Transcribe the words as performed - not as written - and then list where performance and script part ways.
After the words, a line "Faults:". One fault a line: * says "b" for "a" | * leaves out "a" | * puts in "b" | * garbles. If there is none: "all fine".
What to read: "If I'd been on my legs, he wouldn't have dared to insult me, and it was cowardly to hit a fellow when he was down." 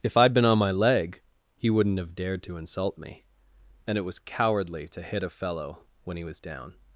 "If I'd been on my leg, he wouldn't have dared to insult me, and it was cowardly to hit a fellow when he was down."
Faults:
* says "leg" for "legs"